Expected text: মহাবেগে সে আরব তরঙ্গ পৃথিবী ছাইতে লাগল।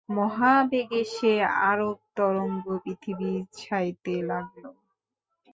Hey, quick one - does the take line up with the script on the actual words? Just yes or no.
yes